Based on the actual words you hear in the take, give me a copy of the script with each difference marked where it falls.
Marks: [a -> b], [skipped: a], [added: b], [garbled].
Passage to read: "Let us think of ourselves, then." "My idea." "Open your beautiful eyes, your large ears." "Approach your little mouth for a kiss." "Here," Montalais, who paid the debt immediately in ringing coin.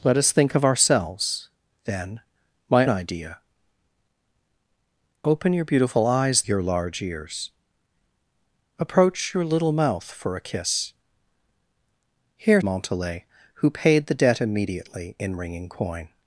"Let us think of ourselves, then." "My idea." "Open your beautiful eyes, your large ears." "Approach your little mouth for a kiss." "Here," Montalais, who paid the debt immediately in ringing coin.